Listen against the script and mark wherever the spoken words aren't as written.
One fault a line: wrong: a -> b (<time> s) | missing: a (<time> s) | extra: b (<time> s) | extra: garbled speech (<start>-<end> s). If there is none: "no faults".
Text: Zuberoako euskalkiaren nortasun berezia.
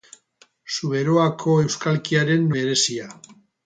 missing: nortasun (2.5 s)